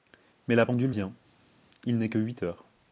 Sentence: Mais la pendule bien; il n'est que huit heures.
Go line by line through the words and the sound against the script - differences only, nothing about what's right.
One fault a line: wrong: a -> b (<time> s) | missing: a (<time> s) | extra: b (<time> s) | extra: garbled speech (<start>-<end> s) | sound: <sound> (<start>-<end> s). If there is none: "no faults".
no faults